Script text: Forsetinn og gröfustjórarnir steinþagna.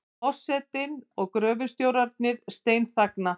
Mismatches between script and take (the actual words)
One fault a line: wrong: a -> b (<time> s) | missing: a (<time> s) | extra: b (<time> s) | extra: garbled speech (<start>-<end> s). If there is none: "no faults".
no faults